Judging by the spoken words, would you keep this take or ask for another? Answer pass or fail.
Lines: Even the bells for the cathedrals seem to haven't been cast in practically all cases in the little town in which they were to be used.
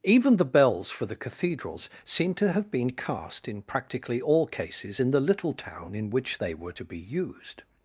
fail